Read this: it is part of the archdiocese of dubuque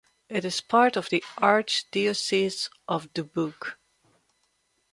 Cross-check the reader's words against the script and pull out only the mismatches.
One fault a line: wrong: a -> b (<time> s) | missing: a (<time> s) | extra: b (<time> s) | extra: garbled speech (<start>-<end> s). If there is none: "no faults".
no faults